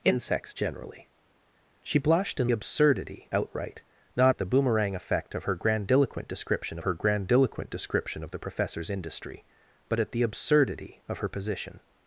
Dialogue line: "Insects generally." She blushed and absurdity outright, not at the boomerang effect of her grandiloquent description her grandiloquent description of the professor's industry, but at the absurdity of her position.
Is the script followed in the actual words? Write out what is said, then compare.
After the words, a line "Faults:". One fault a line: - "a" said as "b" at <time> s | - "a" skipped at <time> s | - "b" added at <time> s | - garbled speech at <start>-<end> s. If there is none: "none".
"Insects generally." She blushed and absurdity outright, not at the boomerang effect of her grandiloquent description her grandiloquent description of the professor's industry, but at the absurdity of her position.
Faults:
none